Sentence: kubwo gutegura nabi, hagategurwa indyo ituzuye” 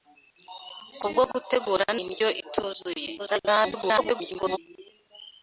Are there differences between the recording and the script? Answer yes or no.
yes